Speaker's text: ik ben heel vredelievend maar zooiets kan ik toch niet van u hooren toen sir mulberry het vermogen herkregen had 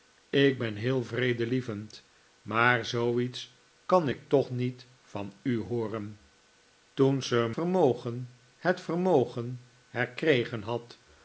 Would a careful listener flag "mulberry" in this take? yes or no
yes